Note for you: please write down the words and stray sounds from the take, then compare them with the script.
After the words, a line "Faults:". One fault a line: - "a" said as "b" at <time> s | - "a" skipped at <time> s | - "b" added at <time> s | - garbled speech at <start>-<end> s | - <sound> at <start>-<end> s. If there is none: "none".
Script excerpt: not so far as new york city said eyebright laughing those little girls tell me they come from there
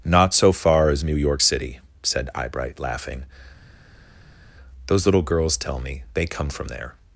not so far as new york city said eyebright laughing those little girls tell me they come from there
Faults:
none